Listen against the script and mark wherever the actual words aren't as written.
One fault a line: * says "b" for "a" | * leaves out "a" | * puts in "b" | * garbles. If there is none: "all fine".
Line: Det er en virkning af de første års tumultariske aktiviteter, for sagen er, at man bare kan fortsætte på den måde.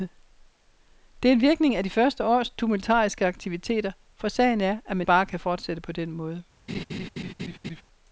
all fine